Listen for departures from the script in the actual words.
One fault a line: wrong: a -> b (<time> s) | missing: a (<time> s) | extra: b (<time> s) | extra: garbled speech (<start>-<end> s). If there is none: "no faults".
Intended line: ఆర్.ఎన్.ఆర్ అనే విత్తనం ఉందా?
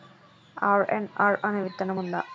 no faults